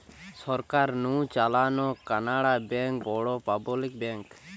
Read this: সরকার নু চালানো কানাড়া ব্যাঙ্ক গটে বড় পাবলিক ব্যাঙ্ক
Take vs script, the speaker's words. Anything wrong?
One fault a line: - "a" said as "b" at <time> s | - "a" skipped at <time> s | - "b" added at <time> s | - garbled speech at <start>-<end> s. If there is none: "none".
- "গটে" skipped at 3.0 s